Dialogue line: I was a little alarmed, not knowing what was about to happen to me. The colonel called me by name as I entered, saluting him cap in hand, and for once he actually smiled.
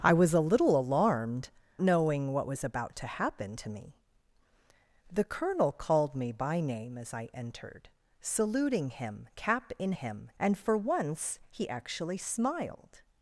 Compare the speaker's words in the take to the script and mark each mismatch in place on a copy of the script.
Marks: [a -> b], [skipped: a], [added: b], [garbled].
I was a little alarmed, [skipped: not] knowing what was about to happen to me. The colonel called me by name as I entered, saluting him cap in [hand, -> him] and for once he actually smiled.